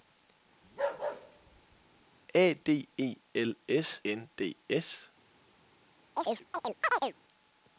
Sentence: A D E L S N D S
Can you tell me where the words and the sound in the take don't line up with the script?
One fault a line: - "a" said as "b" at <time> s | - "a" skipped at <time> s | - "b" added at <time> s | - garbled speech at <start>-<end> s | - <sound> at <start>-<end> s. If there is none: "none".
- bark at 0.6-2.0 s
- chirp at 6.2-7.1 s